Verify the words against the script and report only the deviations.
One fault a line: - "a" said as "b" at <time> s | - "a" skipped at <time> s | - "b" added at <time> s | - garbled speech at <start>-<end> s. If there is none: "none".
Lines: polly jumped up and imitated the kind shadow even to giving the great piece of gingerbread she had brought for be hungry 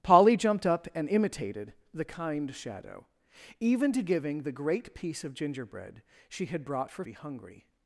none